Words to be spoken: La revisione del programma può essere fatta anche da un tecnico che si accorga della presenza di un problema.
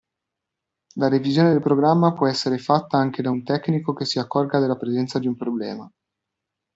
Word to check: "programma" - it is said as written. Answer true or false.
true